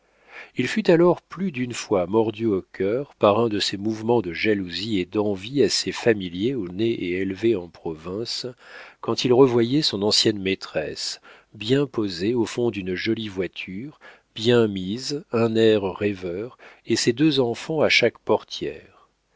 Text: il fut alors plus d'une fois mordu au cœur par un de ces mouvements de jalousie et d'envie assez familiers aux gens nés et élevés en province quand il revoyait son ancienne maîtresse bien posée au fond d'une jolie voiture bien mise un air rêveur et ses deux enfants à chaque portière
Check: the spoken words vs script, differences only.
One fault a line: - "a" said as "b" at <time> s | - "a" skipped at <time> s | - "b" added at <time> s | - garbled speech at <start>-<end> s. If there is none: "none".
- "gens" skipped at 6.7 s